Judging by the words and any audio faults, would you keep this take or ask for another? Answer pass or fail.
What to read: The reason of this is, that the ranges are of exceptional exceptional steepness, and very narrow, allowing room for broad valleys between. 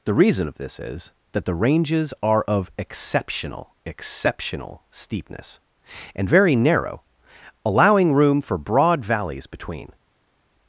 pass